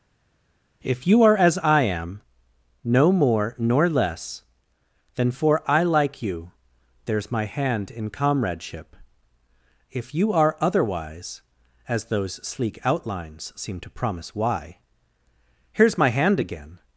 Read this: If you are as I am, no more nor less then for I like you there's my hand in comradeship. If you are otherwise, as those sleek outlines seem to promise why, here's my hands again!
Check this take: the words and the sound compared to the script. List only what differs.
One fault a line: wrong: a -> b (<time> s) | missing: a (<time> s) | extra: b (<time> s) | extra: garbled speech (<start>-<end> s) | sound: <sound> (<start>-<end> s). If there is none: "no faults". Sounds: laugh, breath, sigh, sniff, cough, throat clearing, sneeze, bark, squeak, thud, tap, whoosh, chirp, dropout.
wrong: hands -> hand (16.1 s)